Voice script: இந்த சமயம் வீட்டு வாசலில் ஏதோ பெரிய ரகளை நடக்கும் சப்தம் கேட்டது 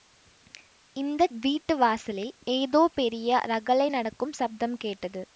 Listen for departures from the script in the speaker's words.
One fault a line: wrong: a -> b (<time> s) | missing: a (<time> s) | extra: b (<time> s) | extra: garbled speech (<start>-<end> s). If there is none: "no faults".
missing: சமயம் (1.3 s)